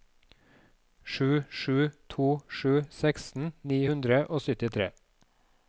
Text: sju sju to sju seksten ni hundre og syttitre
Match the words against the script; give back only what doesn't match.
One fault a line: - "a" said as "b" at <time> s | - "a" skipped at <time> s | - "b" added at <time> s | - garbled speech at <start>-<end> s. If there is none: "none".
none